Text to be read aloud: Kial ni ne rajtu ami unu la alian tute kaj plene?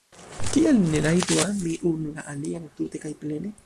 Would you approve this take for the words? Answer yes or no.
yes